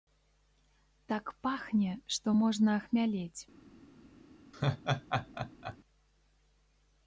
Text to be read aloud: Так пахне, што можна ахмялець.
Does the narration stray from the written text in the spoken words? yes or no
no